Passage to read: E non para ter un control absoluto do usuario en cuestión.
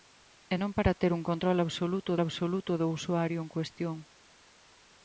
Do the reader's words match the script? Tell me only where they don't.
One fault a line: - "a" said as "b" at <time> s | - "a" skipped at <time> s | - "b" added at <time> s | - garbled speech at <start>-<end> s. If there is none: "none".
- "absoluto" added at 2.2 s